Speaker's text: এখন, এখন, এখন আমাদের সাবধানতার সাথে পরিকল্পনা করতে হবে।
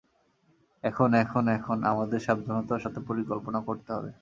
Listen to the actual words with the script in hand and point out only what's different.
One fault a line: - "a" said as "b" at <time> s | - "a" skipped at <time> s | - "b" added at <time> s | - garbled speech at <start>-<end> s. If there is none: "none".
none